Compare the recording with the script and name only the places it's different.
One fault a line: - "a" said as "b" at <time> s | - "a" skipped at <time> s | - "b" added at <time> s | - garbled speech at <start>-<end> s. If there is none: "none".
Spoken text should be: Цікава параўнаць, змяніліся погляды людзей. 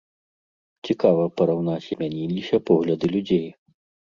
none